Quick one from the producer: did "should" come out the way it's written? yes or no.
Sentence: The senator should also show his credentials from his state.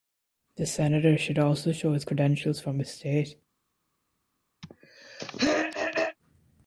yes